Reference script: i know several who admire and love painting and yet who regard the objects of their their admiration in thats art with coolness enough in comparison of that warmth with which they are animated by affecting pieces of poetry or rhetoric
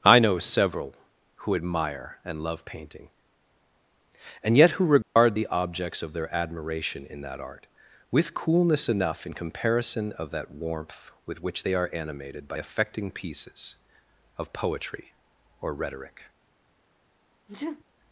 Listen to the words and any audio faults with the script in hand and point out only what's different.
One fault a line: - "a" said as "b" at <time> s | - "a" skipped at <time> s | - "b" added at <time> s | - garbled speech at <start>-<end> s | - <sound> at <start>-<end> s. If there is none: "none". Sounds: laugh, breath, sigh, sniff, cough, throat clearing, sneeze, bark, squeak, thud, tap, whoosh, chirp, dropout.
- dropout at 5.0-5.2 s
- "their" skipped at 6.3 s
- "thats" said as "that" at 7.2 s
- sneeze at 17.5-17.8 s